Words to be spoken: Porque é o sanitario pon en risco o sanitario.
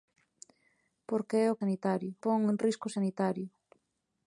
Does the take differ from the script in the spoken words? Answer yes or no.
no